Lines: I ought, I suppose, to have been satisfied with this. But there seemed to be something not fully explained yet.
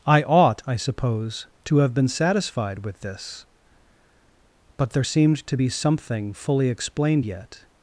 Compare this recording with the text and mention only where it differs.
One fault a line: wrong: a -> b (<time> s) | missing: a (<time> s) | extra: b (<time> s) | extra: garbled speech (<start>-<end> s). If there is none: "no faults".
missing: not (6.3 s)